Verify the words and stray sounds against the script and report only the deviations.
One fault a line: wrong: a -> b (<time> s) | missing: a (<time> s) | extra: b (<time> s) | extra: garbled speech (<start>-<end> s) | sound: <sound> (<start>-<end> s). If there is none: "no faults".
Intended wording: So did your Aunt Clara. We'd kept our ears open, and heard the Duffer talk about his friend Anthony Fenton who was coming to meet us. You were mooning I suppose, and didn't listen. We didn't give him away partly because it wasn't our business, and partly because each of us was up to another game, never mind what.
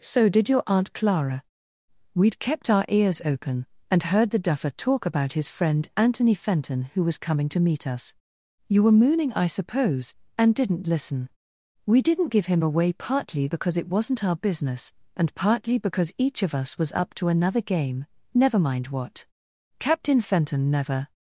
extra: Captain Fenton never (19.8 s)